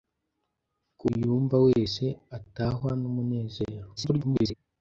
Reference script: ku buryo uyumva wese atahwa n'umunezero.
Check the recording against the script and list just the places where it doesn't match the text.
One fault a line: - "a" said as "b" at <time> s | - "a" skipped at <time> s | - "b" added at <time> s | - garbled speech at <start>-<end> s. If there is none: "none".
- "buryo" skipped at 1.1 s
- garbled speech at 4.0-4.5 s